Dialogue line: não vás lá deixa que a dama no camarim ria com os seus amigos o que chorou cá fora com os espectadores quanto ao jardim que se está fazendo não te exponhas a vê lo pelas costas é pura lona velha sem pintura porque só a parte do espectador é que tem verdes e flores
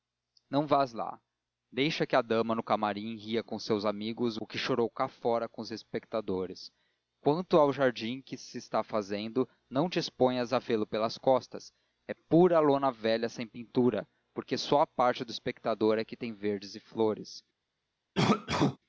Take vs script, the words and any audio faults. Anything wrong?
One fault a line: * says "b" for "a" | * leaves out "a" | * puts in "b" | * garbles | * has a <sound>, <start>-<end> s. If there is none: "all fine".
* has a cough, 18.1-18.8 s